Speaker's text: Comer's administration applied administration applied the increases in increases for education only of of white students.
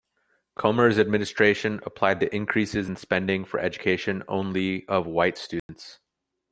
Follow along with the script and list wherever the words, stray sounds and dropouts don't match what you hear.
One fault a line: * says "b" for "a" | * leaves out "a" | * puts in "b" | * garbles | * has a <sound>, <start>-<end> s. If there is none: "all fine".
* leaves out "administration applied"
* says "spending" for "increases"
* leaves out "of"
* has a dropout, 5.6-5.7 s